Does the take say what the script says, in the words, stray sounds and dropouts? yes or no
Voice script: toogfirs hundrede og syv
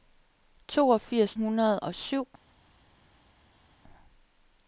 yes